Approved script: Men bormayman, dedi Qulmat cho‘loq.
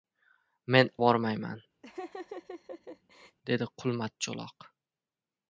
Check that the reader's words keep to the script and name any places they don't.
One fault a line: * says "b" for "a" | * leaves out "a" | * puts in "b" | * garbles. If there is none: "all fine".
all fine